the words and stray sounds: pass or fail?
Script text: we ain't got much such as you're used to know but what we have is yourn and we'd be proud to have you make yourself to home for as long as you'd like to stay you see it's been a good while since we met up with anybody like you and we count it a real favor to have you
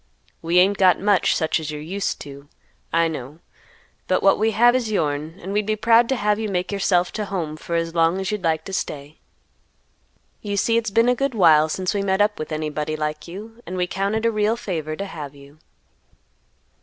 fail